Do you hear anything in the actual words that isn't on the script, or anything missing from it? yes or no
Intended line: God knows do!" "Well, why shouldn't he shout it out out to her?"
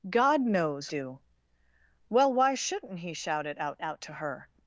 no